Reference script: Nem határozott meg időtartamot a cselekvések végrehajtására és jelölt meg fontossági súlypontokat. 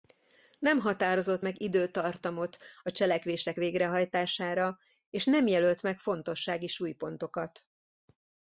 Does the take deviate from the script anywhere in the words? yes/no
yes